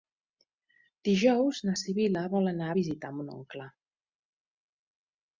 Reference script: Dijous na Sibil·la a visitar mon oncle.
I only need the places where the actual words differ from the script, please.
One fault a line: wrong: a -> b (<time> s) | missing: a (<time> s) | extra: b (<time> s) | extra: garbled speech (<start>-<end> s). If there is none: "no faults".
extra: vol anar (2.4 s)